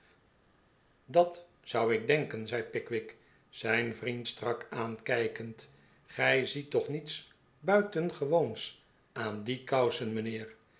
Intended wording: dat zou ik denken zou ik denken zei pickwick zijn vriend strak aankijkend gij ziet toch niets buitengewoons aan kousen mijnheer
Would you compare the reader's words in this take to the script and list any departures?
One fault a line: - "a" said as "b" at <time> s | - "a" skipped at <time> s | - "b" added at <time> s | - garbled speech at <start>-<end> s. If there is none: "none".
- "zou ik denken" skipped at 2.5 s
- "die" added at 9.4 s